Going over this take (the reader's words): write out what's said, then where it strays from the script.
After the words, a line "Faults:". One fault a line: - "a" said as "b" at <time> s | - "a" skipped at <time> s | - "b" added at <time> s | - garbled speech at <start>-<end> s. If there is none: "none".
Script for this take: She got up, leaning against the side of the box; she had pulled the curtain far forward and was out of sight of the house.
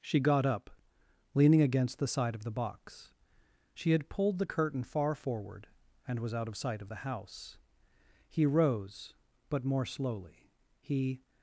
She got up, leaning against the side of the box; she had pulled the curtain far forward and was out of sight of the house. He rose, but more slowly; he
Faults:
- "He rose but more slowly he" added at 8.3 s